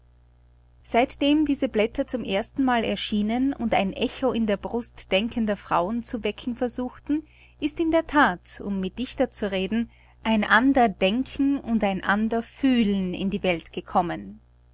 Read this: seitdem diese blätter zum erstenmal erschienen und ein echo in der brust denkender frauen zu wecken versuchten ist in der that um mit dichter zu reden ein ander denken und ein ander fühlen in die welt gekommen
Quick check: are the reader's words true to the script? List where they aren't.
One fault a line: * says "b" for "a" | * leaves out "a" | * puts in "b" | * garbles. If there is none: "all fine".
all fine